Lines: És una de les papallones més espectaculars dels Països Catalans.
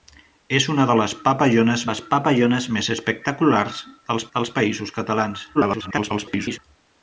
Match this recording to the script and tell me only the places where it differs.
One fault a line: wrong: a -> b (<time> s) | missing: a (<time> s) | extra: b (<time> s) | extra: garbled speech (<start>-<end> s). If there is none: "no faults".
extra: les papallones (1.9 s)
extra: dels (4.4 s)
extra: garbled speech (5.5-6.6 s)